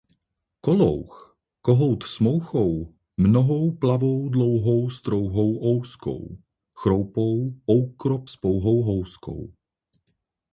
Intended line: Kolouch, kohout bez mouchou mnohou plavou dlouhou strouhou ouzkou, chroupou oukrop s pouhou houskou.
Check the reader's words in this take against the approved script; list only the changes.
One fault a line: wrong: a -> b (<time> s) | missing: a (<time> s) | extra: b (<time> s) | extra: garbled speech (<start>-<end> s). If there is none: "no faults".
wrong: bez -> s (2.0 s)